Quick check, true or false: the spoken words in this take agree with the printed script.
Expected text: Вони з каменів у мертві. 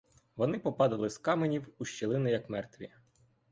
false